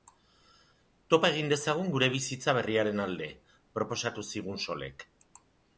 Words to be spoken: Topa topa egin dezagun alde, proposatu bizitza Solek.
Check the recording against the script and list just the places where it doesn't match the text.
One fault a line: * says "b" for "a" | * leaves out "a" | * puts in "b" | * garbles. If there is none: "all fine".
* leaves out "topa"
* puts in "gure bizitza berriaren"
* says "zigun" for "bizitza"